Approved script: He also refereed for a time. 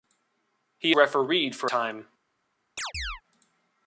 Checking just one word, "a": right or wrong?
wrong